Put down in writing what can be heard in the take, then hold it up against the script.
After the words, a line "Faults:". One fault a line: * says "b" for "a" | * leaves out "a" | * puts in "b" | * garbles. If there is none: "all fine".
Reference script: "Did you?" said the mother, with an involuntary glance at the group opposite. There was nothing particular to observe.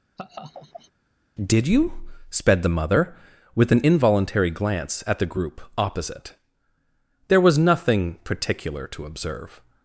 "Did you?" sped the mother, with an involuntary glance at the group opposite. There was nothing particular to observe.
Faults:
* says "sped" for "said"